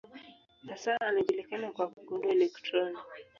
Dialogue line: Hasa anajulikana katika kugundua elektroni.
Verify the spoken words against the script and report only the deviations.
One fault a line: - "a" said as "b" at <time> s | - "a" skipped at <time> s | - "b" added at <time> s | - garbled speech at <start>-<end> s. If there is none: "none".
- "katika" said as "kwa" at 1.7 s